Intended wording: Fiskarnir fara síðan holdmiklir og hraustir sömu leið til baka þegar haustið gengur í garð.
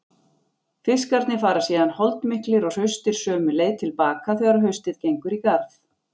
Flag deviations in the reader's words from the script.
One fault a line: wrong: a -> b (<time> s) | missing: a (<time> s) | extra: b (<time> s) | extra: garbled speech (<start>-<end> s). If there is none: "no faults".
no faults